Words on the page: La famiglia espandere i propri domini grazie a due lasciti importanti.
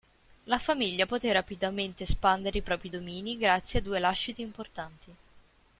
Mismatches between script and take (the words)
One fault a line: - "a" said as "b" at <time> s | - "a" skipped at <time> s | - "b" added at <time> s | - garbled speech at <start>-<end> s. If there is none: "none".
- "poté rapidamente" added at 1.0 s